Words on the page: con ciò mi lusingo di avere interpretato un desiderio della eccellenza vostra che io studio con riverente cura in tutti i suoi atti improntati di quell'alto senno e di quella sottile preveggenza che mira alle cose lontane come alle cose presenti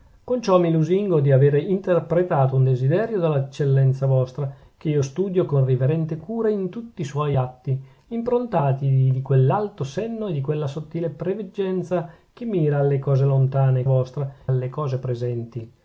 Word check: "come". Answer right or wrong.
wrong